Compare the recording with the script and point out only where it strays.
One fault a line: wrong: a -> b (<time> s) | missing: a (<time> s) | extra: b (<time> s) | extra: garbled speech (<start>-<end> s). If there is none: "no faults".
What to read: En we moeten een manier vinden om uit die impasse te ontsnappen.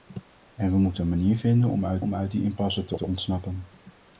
extra: om uit (2.0 s)
extra: te (2.9 s)